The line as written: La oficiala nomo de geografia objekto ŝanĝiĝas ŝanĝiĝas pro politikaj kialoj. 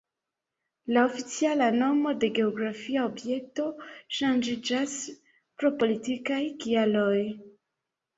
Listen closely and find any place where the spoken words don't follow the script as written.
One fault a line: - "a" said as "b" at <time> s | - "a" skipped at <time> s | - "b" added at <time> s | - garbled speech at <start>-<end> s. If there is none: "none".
- "ŝanĝiĝas" skipped at 5.0 s